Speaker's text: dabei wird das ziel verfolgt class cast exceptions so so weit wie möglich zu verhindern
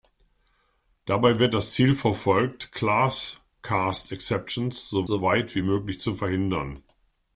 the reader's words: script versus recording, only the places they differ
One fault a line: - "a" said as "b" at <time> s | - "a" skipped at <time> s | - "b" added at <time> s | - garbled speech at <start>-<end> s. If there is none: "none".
none